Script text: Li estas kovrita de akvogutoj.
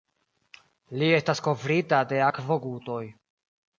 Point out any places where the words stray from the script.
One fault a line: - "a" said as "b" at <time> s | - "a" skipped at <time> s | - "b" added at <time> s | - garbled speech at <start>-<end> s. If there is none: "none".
none